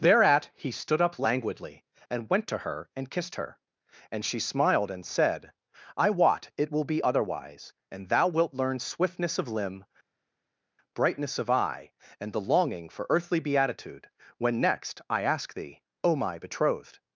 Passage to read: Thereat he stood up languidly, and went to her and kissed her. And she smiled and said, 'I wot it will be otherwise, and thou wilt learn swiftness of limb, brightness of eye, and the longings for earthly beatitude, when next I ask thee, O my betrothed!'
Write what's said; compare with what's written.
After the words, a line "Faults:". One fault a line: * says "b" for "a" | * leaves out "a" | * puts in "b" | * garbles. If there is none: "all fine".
Thereat he stood up languidly, and went to her and kissed her. And she smiled and said, 'I wot it will be otherwise, and thou wilt learn swiftness of limb, brightness of eye, and the longing for earthly beatitude, when next I ask thee, O my betrothed!'
Faults:
* says "longing" for "longings"